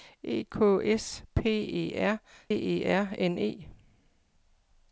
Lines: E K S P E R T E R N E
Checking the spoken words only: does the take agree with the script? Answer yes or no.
no